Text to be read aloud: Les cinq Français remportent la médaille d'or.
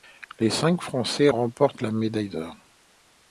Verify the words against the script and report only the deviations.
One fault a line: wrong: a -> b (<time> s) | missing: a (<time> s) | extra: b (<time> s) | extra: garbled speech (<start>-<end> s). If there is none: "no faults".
no faults